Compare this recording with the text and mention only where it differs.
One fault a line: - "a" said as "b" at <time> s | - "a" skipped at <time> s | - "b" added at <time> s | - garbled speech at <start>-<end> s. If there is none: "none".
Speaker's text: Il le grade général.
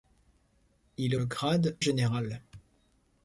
none